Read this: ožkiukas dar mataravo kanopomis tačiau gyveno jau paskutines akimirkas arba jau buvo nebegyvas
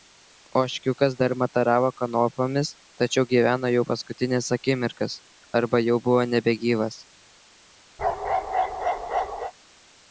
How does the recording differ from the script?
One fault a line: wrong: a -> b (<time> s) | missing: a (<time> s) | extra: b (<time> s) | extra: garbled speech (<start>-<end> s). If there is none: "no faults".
no faults